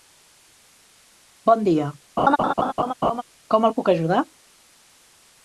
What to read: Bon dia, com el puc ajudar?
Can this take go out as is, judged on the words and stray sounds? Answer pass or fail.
fail